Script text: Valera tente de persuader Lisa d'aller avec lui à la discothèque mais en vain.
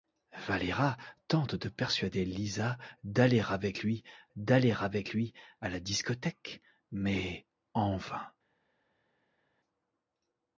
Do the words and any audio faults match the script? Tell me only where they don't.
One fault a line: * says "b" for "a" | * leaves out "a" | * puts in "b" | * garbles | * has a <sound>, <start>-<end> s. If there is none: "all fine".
* puts in "d'aller avec lui"